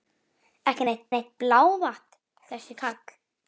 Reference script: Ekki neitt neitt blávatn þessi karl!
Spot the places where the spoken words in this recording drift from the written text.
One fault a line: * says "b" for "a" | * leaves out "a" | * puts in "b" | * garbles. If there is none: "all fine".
all fine